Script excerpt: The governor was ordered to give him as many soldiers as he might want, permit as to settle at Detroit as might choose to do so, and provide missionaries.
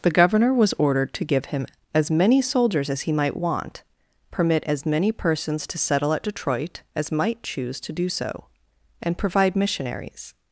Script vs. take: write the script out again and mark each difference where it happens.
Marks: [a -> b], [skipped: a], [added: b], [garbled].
The governor was ordered to give him as many soldiers as he might want, permit as [added: many persons] to settle at Detroit as might choose to do so, and provide missionaries.